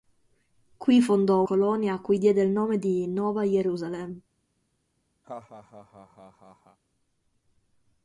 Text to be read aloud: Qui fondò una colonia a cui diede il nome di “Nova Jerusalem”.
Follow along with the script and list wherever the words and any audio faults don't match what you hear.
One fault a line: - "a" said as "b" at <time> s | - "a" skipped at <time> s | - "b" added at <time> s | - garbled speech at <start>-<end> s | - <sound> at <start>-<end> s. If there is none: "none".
- "una" skipped at 1.4 s
- laugh at 5.2-6.8 s